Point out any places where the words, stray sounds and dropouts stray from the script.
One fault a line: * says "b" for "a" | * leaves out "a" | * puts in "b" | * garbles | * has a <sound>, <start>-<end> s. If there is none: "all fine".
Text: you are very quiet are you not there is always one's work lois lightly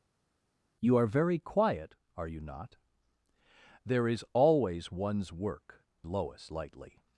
all fine